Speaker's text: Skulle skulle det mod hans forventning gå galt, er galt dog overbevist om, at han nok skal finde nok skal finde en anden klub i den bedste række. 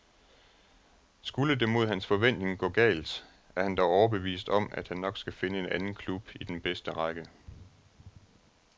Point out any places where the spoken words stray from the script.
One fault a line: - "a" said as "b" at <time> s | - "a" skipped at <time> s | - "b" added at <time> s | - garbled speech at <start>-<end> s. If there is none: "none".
- "skulle" skipped at 1.6 s
- "galt" said as "han" at 3.6 s
- "nok skal finde" skipped at 5.6 s